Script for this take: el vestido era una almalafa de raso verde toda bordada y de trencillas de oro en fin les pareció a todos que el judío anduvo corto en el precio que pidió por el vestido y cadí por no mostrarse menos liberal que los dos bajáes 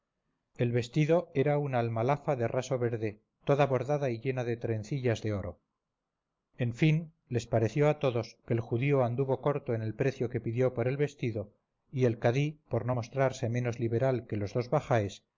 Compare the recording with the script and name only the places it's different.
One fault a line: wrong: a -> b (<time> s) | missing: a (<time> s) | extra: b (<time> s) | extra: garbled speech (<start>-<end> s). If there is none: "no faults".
extra: llena (4.2 s)
extra: el (12.1 s)